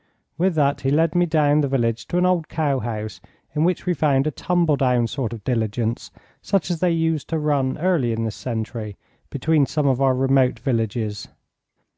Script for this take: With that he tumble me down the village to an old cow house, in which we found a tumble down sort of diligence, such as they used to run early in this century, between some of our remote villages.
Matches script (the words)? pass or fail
fail